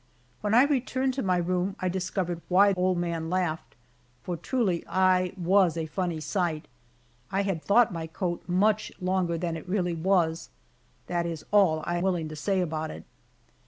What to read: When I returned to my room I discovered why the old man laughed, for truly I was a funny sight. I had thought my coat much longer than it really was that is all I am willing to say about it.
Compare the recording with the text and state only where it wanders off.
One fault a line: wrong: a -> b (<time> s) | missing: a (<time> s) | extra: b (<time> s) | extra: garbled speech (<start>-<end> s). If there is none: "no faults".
missing: the (2.7 s)
missing: am (12.0 s)